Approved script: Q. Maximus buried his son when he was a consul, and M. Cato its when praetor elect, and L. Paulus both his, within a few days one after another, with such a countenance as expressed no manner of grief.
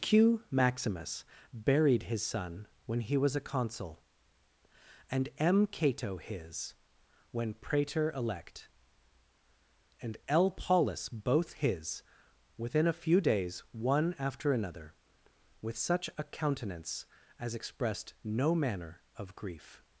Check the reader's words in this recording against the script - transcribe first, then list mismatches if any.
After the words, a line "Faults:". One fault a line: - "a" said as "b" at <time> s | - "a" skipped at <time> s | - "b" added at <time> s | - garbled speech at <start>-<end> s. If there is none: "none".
Q. Maximus buried his son when he was a consul, and M. Cato his when praetor elect, and L. Paulus both his, within a few days one after another, with such a countenance as expressed no manner of grief.
Faults:
- "its" said as "his" at 6.2 s